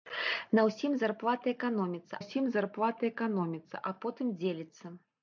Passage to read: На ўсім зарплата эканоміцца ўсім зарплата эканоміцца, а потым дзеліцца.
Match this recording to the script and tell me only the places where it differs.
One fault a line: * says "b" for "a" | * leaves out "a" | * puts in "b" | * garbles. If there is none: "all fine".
all fine